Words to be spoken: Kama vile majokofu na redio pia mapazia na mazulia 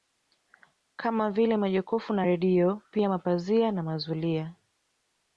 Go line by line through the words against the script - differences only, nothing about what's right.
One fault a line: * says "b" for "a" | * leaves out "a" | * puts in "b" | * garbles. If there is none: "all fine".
all fine